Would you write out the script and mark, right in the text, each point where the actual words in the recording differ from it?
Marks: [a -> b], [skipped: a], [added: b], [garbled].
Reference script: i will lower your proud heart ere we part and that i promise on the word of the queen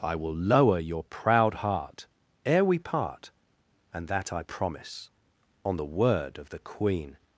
i will lower your proud heart ere we part and that i promise on the word of the queen